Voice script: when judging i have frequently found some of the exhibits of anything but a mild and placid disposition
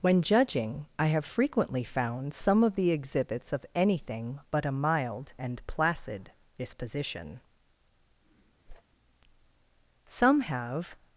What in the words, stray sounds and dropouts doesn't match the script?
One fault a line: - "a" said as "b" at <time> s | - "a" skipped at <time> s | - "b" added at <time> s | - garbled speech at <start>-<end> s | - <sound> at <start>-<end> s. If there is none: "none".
- whoosh at 8.7-8.8 s
- "some have" added at 10.1 s